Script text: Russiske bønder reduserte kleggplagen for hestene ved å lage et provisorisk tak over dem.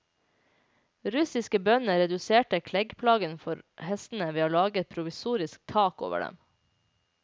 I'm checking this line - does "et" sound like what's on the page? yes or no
yes